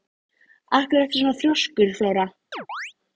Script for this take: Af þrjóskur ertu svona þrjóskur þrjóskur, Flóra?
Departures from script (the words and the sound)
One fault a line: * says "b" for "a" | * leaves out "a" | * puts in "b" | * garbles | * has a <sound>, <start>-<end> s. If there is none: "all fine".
* says "hverju" for "þrjóskur"
* leaves out "þrjóskur"
* has a chirp, 2.5-2.9 s